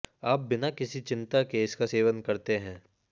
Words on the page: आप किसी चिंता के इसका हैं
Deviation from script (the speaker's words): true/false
true